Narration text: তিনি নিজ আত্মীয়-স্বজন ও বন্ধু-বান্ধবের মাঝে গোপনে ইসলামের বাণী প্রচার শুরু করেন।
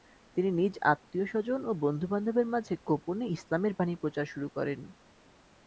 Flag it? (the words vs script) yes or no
no